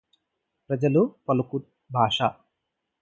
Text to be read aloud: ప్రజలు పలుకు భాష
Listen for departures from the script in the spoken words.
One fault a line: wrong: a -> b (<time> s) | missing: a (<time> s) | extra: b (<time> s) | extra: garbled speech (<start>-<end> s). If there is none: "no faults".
no faults